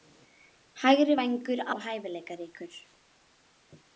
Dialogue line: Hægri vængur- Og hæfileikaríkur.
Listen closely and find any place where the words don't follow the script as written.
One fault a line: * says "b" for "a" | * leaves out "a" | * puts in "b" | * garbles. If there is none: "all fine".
all fine